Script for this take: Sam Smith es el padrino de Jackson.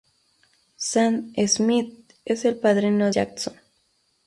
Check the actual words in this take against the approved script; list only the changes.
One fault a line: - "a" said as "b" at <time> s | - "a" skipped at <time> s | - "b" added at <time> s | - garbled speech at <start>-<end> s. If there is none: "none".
- "de" skipped at 3.1 s